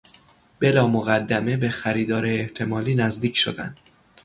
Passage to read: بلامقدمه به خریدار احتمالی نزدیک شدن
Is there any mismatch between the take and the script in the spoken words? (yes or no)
no